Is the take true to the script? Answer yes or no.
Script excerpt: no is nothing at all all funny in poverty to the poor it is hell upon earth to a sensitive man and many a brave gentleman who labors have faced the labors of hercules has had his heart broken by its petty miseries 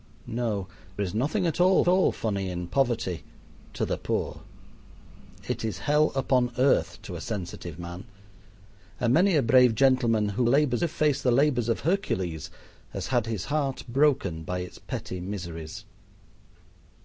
yes